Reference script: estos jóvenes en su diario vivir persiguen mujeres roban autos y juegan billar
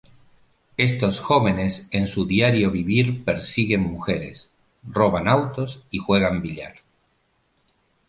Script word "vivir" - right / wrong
right